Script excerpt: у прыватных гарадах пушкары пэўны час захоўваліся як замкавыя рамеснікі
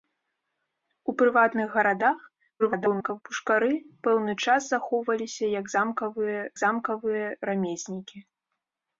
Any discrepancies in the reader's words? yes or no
yes